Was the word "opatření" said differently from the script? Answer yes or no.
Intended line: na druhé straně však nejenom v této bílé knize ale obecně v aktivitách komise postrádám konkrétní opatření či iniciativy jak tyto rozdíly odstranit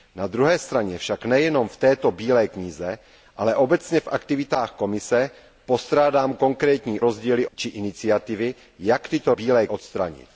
yes